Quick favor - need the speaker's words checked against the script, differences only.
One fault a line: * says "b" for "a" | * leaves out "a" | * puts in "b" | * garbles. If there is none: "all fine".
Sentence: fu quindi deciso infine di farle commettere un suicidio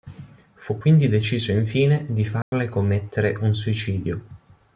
all fine